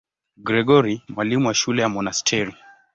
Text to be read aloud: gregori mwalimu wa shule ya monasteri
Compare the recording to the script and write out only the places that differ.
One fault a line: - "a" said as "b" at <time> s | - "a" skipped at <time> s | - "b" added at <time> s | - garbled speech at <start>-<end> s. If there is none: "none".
none